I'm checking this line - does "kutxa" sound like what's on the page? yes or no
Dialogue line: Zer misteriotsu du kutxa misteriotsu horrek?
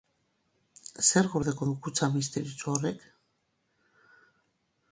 yes